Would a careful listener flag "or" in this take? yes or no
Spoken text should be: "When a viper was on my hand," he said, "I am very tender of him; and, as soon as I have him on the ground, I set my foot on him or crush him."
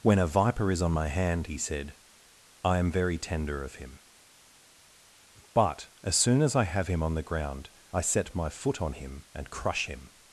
yes